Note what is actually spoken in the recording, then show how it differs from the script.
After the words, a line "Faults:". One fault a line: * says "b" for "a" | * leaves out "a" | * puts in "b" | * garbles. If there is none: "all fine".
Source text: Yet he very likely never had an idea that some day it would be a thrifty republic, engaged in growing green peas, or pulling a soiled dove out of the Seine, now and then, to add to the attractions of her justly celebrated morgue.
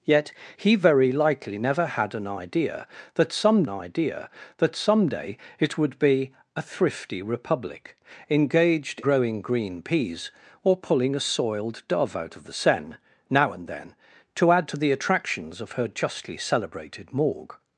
Yet he very likely never had an idea that some idea that some day it would be a thrifty republic, engaged growing green peas, or pulling a soiled dove out of the Seine, now and then, to add to the attractions of her justly celebrated morgue.
Faults:
* puts in "idea that some"
* leaves out "in"